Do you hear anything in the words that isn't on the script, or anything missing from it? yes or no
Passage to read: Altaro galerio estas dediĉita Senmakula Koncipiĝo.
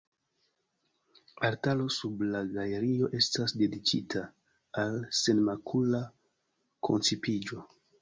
yes